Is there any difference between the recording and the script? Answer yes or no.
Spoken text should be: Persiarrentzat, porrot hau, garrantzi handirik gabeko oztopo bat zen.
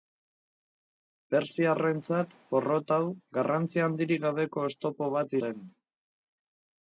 no